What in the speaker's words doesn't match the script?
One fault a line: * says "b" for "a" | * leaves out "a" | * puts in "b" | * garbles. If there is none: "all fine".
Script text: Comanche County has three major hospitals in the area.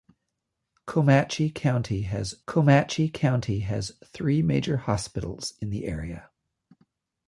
* puts in "comanche County has"